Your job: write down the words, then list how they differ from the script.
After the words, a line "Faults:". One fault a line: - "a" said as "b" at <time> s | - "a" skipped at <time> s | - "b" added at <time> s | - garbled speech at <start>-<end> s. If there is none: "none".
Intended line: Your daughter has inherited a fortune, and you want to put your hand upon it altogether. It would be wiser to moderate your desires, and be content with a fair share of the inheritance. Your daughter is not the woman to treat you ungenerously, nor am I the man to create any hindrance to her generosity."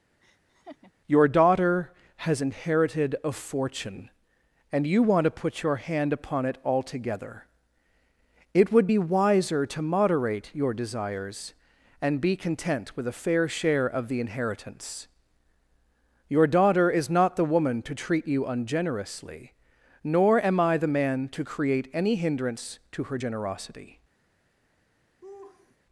Your daughter has inherited a fortune, and you want to put your hand upon it altogether. It would be wiser to moderate your desires, and be content with a fair share of the inheritance. Your daughter is not the woman to treat you ungenerously, nor am I the man to create any hindrance to her generosity."
Faults:
none